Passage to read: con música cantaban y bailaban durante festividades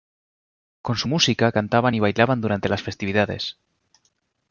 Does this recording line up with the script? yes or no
no